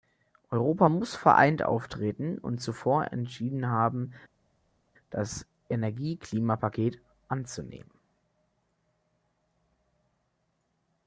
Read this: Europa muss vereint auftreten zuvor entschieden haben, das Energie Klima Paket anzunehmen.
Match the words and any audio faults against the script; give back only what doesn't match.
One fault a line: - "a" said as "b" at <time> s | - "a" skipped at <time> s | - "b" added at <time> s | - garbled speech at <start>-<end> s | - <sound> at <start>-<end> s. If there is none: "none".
- "und" added at 2.4 s